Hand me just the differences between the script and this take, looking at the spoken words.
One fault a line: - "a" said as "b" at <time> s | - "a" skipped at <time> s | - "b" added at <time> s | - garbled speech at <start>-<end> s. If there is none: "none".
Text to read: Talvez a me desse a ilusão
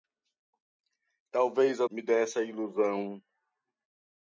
none